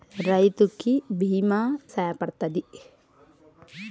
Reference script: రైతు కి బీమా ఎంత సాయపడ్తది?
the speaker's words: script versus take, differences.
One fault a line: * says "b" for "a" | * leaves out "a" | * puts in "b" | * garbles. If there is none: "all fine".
* leaves out "ఎంత"